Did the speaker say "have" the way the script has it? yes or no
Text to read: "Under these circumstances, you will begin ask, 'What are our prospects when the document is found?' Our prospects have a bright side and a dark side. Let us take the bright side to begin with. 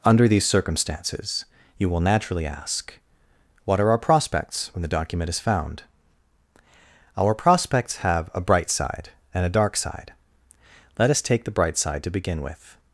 yes